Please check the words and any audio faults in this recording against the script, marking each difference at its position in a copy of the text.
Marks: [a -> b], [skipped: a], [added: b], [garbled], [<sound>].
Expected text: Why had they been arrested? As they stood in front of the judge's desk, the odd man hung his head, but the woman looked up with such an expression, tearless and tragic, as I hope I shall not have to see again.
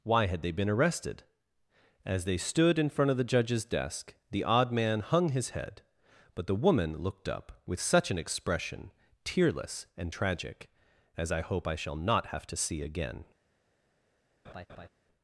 Why had they been arrested? As they stood in front of the judge's desk, the odd man hung his head, but the woman looked up with such an expression, tearless and tragic, as I hope I shall not have to see again. [laugh]